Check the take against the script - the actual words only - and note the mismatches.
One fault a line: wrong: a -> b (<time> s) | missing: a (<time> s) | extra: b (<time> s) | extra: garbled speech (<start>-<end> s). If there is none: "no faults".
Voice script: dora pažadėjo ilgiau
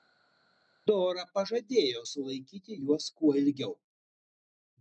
extra: sulaikyti juos kuo (2.1 s)